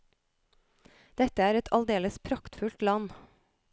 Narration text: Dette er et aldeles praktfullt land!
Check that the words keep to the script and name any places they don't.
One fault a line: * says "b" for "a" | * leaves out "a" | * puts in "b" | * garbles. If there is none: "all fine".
all fine